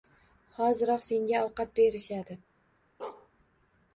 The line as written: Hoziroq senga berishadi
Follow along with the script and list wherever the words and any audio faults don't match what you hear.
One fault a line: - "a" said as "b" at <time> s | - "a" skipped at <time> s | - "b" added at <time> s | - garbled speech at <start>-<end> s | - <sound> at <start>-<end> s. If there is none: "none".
- "ovqat" added at 1.5 s
- bark at 3.0-3.3 s